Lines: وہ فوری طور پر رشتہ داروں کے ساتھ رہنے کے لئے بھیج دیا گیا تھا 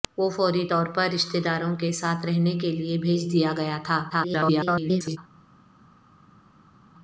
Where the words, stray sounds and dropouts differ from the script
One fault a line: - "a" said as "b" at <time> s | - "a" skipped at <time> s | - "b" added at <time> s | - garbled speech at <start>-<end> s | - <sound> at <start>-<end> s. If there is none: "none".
- garbled speech at 4.1-5.2 s